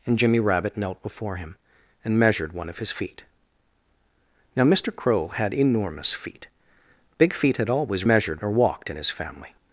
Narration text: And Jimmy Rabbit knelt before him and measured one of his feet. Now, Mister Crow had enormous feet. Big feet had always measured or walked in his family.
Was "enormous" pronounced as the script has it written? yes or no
yes